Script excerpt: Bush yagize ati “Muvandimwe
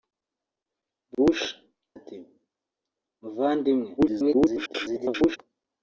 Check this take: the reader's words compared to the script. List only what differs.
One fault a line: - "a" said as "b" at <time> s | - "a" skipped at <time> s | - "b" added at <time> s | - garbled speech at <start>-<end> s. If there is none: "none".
- "yagize" skipped at 1.4 s
- garbled speech at 4.0-5.4 s